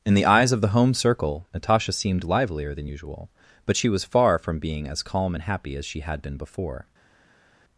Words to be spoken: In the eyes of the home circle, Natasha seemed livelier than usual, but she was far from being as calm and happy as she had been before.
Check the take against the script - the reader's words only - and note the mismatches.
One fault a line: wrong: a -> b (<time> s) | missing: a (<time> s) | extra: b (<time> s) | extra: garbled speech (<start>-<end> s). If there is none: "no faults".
no faults